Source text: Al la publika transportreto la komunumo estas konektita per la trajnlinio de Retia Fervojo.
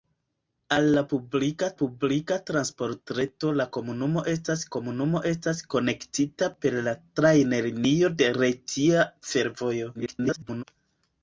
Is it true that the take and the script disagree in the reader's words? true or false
true